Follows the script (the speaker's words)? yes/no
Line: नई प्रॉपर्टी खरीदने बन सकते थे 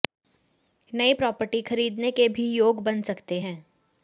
no